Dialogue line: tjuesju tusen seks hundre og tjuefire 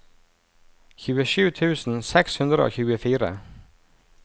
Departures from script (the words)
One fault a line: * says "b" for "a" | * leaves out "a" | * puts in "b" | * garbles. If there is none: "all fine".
all fine